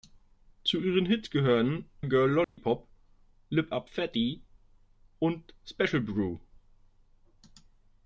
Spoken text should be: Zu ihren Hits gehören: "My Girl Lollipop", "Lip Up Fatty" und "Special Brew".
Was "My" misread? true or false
true